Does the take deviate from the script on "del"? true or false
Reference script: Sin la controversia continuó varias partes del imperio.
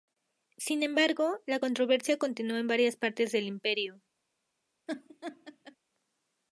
false